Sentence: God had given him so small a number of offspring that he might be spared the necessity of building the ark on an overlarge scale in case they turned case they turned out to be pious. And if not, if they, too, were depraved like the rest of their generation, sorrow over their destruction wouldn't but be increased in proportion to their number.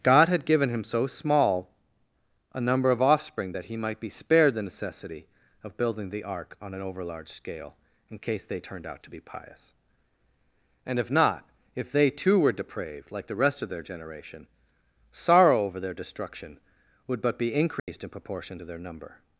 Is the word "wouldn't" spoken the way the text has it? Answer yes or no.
no